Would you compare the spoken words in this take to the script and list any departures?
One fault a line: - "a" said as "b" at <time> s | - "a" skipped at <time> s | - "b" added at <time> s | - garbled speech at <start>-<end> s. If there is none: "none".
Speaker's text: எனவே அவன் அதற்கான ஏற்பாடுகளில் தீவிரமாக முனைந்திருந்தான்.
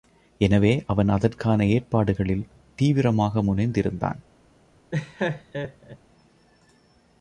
none